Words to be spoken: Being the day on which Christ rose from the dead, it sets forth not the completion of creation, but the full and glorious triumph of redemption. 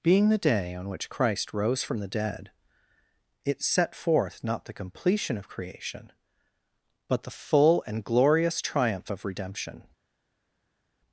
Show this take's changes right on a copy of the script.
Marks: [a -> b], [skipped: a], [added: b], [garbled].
Being the day on which Christ rose from the dead, it [sets -> set] forth not the completion of creation, but the full and glorious triumph of redemption.